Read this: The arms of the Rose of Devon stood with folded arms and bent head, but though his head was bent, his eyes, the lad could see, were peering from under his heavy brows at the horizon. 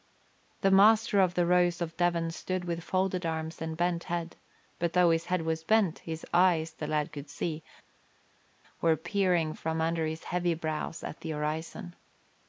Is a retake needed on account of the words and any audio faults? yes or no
yes